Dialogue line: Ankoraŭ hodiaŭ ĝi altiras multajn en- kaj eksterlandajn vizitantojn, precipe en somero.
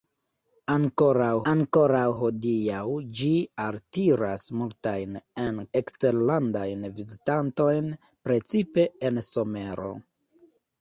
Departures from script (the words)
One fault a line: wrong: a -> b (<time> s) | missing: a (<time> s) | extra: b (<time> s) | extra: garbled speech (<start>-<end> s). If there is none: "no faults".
extra: ankoraŭ (1.5 s)
missing: kaj (5.6 s)